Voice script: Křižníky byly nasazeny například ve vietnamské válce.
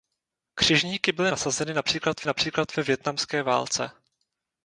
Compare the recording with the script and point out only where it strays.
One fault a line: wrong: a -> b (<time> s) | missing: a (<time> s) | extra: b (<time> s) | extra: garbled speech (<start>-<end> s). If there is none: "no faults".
extra: například (2.2 s)